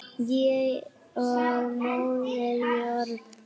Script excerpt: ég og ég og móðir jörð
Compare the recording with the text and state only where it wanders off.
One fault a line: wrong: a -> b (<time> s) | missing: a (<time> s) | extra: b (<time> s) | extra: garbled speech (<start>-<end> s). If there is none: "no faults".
missing: ég og (1.8 s)